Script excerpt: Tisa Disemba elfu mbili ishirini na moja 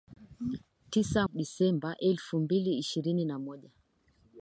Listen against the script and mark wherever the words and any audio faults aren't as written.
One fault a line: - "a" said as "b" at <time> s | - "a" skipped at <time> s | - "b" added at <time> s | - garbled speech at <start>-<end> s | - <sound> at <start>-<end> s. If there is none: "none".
none